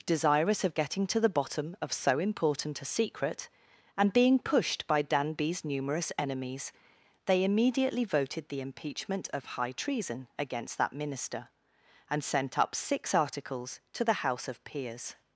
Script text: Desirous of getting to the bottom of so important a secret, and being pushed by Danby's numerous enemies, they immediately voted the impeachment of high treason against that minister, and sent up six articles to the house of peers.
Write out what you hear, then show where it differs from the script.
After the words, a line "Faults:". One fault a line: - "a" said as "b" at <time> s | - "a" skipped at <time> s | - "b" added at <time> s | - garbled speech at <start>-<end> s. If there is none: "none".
Desirous of getting to the bottom of so important a secret, and being pushed by Danby's numerous enemies, they immediately voted the impeachment of high treason against that minister, and sent up six articles to the house of peers.
Faults:
none